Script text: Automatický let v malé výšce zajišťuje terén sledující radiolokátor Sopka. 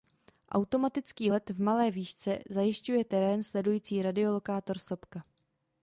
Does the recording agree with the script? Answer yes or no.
yes